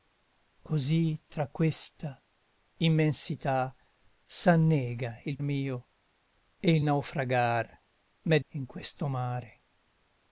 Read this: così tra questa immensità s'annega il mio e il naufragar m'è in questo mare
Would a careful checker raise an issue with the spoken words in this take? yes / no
no